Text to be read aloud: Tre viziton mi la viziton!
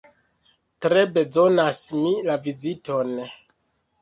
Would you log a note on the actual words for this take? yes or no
yes